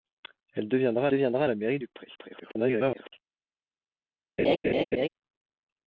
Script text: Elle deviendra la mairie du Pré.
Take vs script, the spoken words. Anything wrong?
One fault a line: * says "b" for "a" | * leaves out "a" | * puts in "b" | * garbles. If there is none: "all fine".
* puts in "deviendra"
* garbles